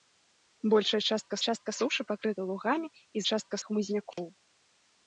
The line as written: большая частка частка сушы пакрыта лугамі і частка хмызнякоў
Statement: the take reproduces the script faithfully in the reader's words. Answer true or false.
true